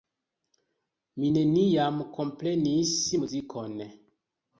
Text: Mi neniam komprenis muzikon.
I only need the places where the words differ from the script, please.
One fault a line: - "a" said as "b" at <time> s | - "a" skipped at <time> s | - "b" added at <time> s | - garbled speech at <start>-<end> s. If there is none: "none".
none